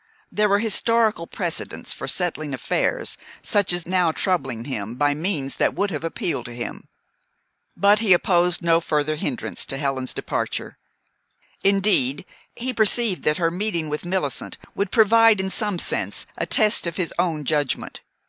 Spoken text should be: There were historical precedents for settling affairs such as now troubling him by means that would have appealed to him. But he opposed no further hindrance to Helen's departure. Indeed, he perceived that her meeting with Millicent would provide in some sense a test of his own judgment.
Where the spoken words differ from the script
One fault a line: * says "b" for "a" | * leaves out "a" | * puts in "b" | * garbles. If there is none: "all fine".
all fine